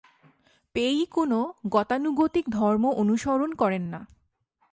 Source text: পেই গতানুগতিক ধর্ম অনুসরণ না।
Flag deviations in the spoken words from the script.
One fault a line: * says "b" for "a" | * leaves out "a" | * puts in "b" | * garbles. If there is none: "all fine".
* puts in "কোন"
* puts in "করেন"